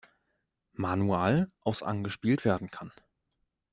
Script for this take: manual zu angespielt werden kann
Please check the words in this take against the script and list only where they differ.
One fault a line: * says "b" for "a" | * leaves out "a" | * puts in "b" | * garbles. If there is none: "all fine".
* says "aus" for "zu"